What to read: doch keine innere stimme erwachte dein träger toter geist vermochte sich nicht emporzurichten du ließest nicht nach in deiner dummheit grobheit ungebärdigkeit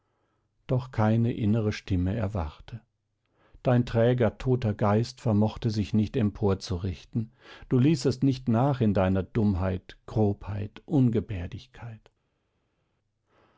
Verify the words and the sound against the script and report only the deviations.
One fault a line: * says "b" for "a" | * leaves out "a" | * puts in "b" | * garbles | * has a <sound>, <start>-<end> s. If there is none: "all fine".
all fine